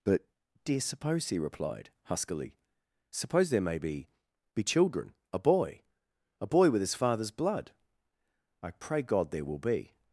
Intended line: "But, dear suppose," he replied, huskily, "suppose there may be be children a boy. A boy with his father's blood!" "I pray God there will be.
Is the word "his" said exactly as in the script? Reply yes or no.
yes